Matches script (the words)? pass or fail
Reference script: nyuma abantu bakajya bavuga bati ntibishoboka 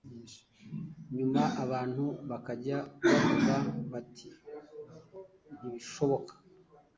pass